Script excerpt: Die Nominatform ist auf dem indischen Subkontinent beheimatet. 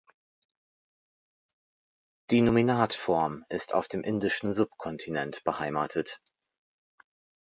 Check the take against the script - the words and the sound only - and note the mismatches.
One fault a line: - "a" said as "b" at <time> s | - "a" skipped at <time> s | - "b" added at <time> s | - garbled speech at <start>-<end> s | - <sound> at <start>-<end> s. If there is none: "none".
none